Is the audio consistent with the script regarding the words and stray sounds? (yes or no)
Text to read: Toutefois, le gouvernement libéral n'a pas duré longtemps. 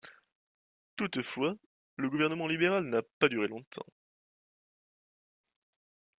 yes